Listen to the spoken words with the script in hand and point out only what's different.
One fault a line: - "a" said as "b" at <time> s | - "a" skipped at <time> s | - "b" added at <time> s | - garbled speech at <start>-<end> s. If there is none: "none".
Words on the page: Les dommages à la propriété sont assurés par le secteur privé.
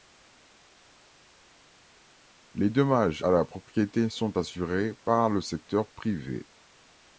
none